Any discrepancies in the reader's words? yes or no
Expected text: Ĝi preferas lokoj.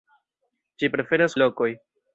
no